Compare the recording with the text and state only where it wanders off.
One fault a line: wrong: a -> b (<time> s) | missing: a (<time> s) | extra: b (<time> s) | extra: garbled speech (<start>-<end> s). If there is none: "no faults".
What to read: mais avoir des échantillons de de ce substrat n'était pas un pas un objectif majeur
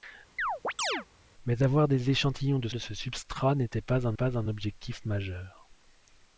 no faults